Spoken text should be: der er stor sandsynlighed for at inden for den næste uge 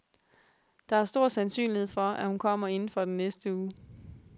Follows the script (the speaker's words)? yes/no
no